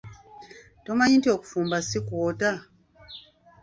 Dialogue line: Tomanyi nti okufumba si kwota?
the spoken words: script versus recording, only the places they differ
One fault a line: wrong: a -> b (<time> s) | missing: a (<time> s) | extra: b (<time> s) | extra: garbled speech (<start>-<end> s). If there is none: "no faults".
no faults